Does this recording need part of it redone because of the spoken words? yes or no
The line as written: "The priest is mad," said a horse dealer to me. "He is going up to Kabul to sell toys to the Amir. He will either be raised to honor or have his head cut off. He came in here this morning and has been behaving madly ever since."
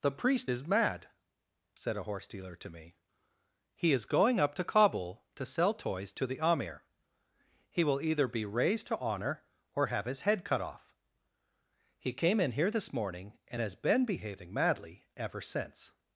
no